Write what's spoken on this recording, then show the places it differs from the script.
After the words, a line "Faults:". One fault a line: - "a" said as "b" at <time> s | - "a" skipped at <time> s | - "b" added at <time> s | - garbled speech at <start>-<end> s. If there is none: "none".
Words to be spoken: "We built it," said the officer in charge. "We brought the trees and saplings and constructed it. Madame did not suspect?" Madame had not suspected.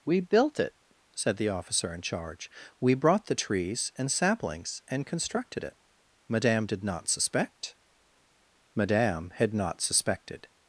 "We built it," said the officer in charge. "We brought the trees and saplings and constructed it. Madame did not suspect?" Madame had not suspected.
Faults:
none